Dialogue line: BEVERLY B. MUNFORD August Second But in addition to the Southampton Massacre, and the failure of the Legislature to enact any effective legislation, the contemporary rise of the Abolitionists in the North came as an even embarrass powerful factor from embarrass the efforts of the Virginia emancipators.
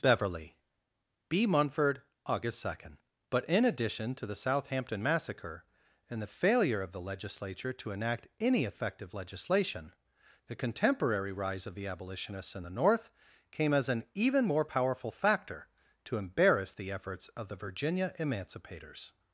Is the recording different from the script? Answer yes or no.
yes